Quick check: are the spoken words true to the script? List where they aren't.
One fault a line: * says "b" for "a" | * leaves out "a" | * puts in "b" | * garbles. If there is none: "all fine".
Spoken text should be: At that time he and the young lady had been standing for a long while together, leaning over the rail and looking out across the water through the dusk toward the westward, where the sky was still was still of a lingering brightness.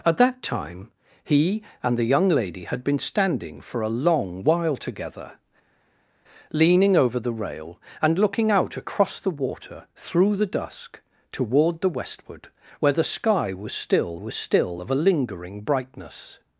all fine